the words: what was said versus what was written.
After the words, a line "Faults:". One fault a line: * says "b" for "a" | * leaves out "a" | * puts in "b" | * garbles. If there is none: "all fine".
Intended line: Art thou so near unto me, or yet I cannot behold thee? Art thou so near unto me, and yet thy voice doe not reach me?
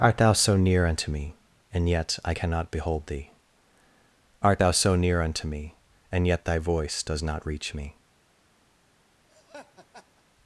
Art thou so near unto me, and yet I cannot behold thee? Art thou so near unto me, and yet thy voice does not reach me?
Faults:
* says "and" for "or"
* says "does" for "doe"